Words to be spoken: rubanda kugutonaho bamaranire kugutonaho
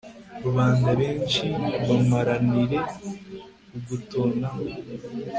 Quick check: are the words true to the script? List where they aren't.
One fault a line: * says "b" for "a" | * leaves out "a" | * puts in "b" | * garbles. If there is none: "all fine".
* says "benshi" for "kugutonaho"